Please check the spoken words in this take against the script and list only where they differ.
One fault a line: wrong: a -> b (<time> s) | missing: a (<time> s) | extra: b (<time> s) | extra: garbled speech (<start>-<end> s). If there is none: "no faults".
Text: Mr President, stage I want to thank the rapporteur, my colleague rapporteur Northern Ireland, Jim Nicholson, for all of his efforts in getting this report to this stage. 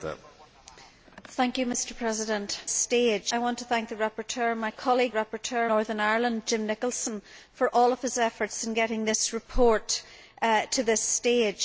no faults